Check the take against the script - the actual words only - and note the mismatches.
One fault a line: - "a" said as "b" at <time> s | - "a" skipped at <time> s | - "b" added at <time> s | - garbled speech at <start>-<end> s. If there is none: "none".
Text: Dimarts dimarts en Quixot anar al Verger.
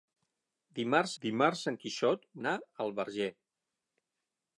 none